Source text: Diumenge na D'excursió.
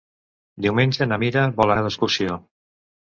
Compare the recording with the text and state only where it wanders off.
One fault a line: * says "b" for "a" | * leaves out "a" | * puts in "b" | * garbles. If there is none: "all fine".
* puts in "Mira vol anar"